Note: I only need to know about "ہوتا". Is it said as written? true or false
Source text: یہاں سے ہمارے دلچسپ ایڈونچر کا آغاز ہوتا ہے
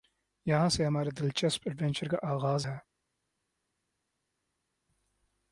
false